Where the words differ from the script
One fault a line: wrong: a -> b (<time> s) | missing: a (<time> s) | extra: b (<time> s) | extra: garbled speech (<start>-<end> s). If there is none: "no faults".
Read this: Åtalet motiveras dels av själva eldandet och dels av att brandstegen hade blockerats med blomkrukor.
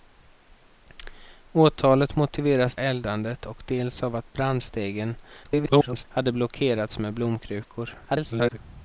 missing: dels av själva (2.8 s)
extra: garbled speech (5.4-6.1 s)
extra: garbled speech (8.1-8.6 s)